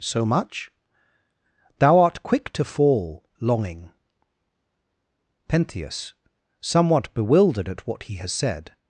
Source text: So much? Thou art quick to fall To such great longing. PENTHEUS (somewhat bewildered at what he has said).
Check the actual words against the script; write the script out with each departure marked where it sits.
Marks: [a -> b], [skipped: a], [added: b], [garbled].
So much? Thou art quick to fall [skipped: To such great] longing. PENTHEUS (somewhat bewildered at what he has said).